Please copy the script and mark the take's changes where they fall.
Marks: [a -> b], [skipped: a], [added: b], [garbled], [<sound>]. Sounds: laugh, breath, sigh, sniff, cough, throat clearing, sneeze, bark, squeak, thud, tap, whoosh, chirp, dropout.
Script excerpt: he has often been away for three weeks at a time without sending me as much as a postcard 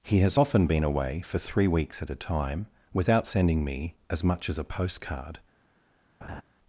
he has often been away for three weeks at a time without sending me as much as a postcard [laugh]